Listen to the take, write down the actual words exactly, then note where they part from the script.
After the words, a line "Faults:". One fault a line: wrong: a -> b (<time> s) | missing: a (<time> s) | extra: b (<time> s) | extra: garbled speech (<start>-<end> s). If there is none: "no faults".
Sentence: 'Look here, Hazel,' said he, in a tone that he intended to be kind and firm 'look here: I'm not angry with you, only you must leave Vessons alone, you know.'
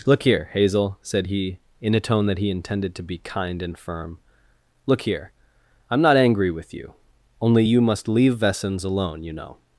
'Look here, Hazel,' said he, in a tone that he intended to be kind and firm 'look here: I'm not angry with you, only you must leave Vessons alone, you know.'
Faults:
no faults